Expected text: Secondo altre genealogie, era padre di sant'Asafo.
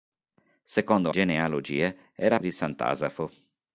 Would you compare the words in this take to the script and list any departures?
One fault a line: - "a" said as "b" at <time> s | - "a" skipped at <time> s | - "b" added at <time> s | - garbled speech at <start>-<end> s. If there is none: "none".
- "altre" skipped at 1.1 s
- "padre" skipped at 2.4 s